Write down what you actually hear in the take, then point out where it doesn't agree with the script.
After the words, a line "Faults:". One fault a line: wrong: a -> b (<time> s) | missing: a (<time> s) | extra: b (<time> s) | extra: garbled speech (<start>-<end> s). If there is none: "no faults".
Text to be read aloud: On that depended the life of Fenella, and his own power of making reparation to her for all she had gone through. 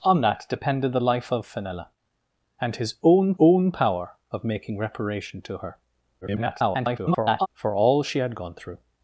On that depended the life of Fenella, and his own own power of making reparation to her [garbled] for all she had gone through.
Faults:
extra: own (3.4 s)
extra: garbled speech (6.2-7.5 s)